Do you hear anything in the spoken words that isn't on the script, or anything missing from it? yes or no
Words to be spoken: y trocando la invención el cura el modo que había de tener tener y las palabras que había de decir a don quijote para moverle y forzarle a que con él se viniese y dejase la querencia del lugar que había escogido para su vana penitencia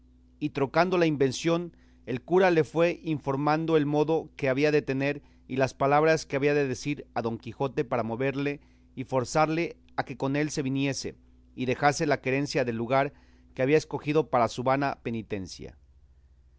yes